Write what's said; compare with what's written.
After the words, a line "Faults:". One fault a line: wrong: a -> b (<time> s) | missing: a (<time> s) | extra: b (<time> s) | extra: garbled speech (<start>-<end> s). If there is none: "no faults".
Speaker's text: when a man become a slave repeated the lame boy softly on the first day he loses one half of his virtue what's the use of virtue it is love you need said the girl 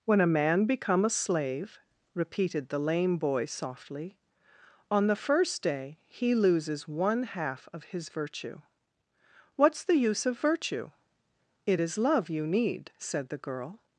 when a man become a slave repeated the lame boy softly on the first day he loses one half of his virtue what's the use of virtue it is love you need said the girl
Faults:
no faults